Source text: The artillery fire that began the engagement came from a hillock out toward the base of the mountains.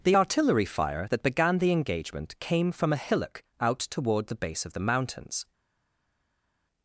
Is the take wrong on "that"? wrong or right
right